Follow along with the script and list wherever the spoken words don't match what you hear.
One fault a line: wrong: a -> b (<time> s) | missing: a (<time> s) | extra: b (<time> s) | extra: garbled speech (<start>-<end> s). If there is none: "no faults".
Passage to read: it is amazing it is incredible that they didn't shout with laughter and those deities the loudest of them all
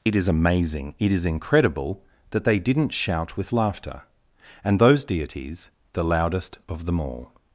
no faults